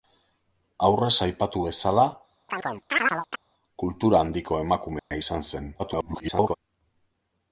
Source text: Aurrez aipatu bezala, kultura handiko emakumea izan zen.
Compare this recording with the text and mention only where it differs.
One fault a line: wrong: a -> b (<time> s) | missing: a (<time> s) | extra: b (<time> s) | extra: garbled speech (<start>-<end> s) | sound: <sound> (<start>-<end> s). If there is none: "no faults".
sound: chirp (2.5-3.4 s)
sound: dropout (5.0-5.1 s)
extra: garbled speech (5.8-6.6 s)